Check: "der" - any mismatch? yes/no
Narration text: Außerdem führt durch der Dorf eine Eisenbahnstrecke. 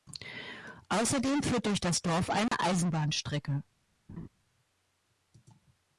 yes